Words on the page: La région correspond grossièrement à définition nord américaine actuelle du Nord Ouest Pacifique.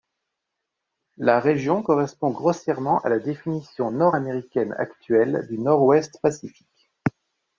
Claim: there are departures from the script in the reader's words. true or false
true